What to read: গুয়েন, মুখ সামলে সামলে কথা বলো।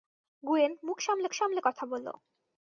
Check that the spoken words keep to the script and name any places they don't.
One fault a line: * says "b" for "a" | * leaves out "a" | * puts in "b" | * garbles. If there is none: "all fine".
all fine